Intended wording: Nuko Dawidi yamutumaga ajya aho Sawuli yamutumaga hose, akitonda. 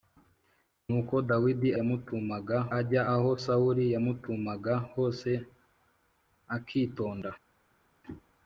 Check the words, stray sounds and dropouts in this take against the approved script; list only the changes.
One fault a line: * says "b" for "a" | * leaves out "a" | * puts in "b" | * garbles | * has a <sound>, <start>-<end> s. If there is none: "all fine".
all fine